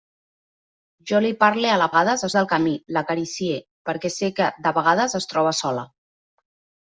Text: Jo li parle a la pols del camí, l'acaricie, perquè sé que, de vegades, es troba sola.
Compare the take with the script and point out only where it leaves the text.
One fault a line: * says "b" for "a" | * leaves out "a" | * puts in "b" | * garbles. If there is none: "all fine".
* says "vegades" for "pols"